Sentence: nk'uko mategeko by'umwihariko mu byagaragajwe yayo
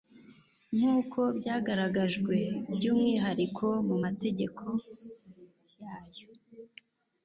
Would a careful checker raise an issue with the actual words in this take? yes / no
yes